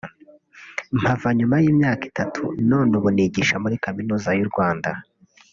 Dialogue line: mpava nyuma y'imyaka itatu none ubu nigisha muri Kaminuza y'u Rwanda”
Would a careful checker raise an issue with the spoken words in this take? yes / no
no